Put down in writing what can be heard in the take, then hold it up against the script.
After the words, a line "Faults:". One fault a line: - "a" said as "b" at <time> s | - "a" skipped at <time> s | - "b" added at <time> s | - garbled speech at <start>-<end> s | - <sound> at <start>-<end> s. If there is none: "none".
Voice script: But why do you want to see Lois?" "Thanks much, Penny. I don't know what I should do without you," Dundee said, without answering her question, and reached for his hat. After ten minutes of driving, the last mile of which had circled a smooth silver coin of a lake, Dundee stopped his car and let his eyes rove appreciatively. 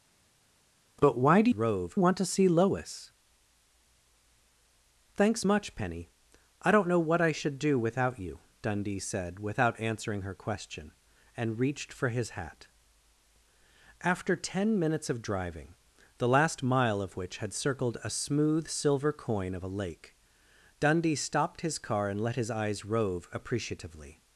But why do rove want to see Lois?" "Thanks much, Penny. I don't know what I should do without you," Dundee said, without answering her question, and reached for his hat. After ten minutes of driving, the last mile of which had circled a smooth silver coin of a lake, Dundee stopped his car and let his eyes rove appreciatively.
Faults:
- "you" said as "rove" at 1.5 s